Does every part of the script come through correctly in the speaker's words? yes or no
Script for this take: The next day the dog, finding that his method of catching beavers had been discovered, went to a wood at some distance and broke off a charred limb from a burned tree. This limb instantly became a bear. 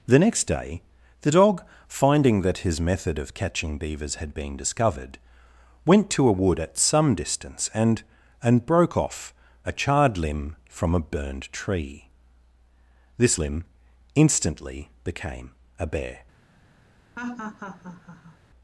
no